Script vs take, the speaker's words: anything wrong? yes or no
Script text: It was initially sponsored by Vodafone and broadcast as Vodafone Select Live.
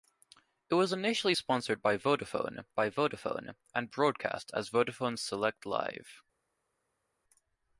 yes